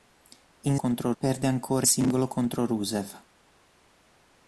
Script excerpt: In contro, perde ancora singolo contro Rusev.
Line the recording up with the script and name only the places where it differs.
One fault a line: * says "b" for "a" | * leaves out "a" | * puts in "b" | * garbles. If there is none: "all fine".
all fine